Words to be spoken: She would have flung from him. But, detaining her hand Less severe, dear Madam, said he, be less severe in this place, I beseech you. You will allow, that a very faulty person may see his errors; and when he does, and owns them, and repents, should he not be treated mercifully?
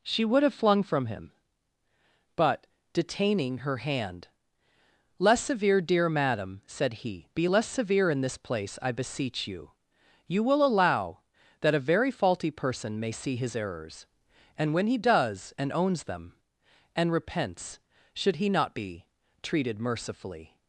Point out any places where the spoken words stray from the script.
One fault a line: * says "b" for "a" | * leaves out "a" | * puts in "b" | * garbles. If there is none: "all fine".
all fine